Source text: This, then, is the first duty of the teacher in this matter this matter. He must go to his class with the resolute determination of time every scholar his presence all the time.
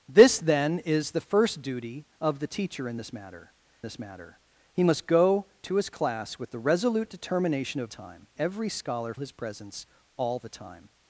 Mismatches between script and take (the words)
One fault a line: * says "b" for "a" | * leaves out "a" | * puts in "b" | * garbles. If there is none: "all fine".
all fine